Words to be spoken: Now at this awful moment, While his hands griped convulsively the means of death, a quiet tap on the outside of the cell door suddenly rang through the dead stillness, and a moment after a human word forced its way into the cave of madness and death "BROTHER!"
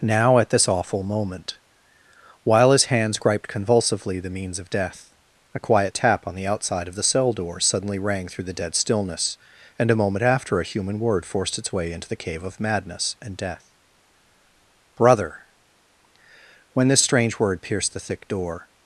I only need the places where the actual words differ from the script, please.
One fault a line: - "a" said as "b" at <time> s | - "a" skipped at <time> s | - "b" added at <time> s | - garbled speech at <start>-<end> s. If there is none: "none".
- "When this strange word pierced the thick door" added at 16.7 s